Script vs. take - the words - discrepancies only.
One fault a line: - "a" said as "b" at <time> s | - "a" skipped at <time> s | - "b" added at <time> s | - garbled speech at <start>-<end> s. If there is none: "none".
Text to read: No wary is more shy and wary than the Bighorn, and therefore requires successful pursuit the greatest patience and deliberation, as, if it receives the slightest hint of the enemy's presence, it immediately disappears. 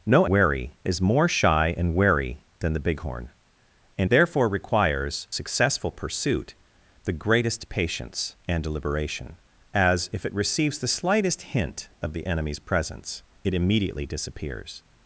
none